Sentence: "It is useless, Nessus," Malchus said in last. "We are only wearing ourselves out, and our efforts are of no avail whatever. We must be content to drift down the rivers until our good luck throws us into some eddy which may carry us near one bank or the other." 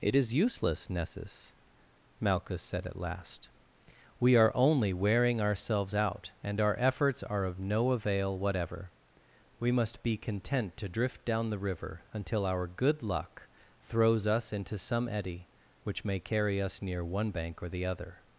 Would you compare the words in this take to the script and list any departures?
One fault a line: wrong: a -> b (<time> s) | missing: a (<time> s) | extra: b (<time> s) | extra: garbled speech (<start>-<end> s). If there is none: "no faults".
wrong: in -> at (2.9 s)
wrong: rivers -> river (11.6 s)